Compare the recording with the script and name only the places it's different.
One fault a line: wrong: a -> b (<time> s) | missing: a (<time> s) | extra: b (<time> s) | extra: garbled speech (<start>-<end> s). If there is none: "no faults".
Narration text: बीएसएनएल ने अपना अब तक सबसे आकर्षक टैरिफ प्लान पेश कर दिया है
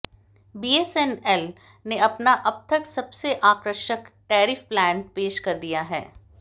no faults